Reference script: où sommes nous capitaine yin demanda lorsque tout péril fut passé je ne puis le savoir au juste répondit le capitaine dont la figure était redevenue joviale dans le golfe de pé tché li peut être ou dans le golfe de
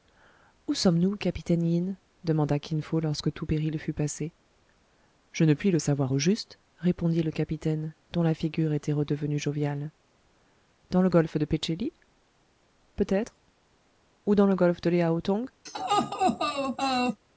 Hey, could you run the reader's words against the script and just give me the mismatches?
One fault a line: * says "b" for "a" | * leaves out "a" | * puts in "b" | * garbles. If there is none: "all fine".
* puts in "kin fo"